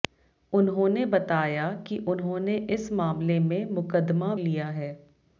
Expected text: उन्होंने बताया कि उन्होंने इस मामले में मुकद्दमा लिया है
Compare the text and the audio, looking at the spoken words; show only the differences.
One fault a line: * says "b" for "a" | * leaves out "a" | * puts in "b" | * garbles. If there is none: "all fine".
all fine